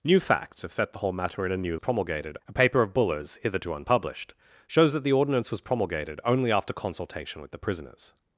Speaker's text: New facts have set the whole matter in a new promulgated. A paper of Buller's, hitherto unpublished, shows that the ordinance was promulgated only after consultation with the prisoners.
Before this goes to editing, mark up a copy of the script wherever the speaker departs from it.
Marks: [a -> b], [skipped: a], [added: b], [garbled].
New facts have set the whole matter in a new promulgated. A paper of Buller's, hitherto unpublished, shows that the ordinance was promulgated only after consultation with the prisoners.